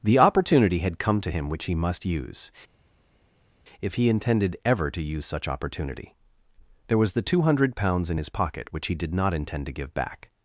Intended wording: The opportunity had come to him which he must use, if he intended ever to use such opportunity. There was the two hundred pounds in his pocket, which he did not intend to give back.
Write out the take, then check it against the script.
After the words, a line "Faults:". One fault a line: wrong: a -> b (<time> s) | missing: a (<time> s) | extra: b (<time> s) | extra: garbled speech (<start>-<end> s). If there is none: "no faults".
The opportunity had come to him which he must use, if he intended ever to use such opportunity. There was the two hundred pounds in his pocket, which he did not intend to give back.
Faults:
no faults